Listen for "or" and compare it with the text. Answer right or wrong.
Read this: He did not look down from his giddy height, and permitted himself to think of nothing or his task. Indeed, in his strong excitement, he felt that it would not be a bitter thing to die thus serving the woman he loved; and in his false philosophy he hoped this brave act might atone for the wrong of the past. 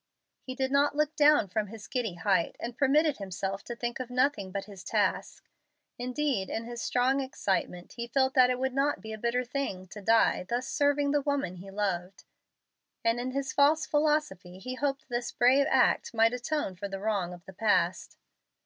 wrong